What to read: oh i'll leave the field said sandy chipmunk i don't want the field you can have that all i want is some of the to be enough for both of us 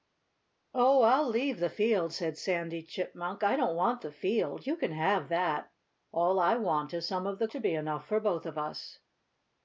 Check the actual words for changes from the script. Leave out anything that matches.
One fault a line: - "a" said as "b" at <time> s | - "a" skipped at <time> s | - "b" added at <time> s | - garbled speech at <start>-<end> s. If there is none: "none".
none